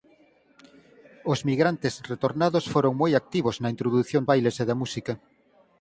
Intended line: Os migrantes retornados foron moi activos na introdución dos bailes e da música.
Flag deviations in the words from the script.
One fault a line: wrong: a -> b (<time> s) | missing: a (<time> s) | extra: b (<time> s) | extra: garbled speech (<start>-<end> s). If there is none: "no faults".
missing: dos (4.2 s)